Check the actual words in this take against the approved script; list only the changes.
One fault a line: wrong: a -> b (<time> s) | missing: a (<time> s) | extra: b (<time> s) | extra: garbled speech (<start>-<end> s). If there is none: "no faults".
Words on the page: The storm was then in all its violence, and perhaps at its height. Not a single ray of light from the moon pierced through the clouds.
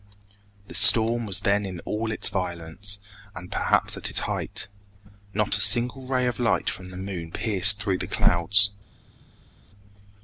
no faults